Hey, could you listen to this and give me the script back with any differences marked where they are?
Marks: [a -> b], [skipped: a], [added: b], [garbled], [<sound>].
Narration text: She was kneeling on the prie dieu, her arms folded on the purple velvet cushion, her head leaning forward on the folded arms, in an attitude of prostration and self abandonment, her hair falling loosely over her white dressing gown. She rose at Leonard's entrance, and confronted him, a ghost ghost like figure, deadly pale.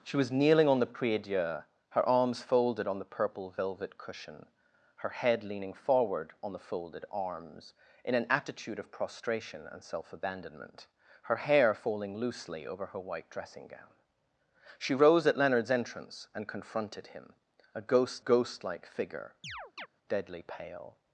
She was kneeling on the prie dieu, her arms folded on the purple velvet cushion, her head leaning forward on the folded arms, in an attitude of prostration and self abandonment, her hair falling loosely over her white dressing gown. She rose at Leonard's entrance, and confronted him, a ghost ghost like figure, [chirp] deadly pale.